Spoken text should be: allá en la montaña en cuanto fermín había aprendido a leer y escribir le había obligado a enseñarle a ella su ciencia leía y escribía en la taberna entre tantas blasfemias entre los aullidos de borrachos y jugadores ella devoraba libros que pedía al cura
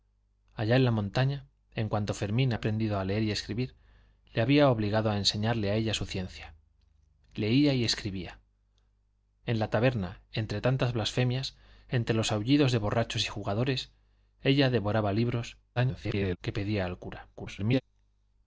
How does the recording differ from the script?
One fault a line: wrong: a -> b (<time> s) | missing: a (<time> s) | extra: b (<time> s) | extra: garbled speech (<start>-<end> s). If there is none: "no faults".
missing: había (2.5 s)
extra: garbled speech (15.8-16.4 s)
extra: garbled speech (17.3-17.8 s)